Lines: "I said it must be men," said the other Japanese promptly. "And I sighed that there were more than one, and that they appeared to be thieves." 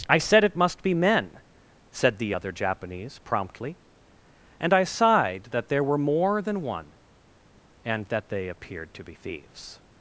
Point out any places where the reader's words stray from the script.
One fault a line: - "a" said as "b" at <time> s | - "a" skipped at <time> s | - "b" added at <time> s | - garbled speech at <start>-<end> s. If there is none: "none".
none